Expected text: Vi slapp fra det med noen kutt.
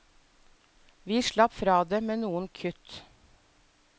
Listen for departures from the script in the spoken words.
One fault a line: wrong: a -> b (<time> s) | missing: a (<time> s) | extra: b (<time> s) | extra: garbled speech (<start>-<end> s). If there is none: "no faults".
no faults